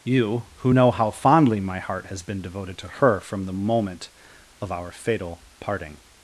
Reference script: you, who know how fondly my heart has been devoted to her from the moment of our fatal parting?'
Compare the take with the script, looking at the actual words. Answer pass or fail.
pass